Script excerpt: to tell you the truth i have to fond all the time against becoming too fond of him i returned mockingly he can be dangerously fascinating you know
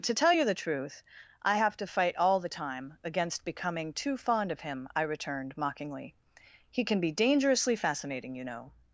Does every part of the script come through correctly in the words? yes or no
no